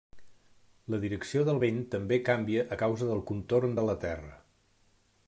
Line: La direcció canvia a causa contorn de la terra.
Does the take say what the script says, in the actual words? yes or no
no